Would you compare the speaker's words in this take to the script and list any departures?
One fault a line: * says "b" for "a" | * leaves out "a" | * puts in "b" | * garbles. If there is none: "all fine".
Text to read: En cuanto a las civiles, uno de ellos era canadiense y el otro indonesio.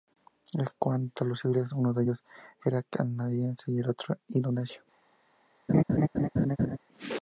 * says "los" for "las"